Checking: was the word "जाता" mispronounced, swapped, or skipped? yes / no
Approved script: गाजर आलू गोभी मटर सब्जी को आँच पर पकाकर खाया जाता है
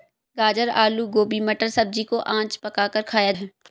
yes